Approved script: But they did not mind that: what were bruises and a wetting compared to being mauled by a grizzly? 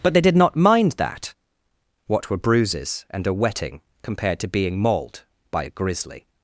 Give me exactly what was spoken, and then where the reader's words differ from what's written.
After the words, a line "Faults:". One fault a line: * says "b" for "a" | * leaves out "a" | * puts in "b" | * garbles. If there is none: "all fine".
But they did not mind that: what were bruises and a wetting compared to being mauled by a grizzly?
Faults:
all fine